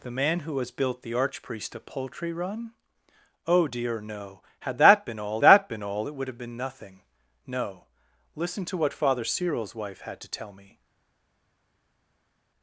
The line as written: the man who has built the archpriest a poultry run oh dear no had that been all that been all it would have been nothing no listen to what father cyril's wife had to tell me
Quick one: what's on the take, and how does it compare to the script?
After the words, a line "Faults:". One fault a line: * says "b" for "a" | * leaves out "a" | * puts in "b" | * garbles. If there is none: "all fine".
the man who has built the archpriest a poultry run oh dear no had that been all that been all it would have been nothing no listen to what father cyril's wife had to tell me
Faults:
all fine